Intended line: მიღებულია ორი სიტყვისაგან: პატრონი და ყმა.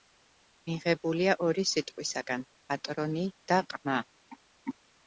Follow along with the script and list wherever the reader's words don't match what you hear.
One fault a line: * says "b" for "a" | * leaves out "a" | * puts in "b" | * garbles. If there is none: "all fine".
all fine